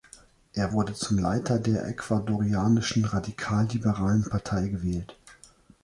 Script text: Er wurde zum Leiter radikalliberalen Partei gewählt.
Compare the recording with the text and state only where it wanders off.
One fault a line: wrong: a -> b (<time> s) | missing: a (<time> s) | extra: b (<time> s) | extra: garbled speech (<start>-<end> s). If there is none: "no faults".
extra: der Ecuadorianischen (1.6 s)